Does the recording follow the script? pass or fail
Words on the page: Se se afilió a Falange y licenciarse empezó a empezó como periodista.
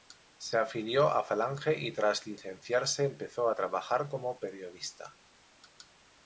fail